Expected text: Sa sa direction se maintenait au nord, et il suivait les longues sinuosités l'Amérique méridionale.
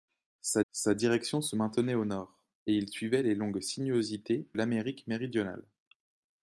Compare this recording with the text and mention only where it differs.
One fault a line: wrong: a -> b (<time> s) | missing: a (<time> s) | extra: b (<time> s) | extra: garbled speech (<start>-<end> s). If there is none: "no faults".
no faults